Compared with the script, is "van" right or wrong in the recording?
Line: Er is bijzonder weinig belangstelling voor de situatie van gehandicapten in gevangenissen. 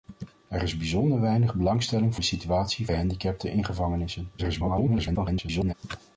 wrong